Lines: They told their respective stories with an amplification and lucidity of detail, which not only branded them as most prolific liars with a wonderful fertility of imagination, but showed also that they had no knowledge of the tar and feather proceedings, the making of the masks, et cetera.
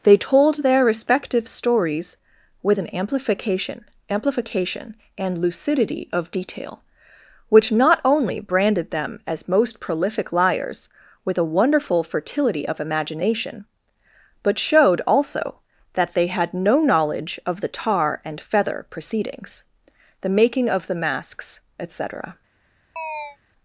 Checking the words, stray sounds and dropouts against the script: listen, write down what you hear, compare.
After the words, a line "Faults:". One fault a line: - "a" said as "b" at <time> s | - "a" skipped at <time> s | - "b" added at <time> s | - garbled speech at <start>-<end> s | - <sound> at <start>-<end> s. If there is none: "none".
They told their respective stories with an amplification amplification and lucidity of detail, which not only branded them as most prolific liars with a wonderful fertility of imagination, but showed also that they had no knowledge of the tar and feather proceedings, the making of the masks, et cetera.
Faults:
- "amplification" added at 4.1 s
- chirp at 23.0-23.4 s